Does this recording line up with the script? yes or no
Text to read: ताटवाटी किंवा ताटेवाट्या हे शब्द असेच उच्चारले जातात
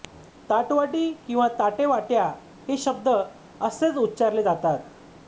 yes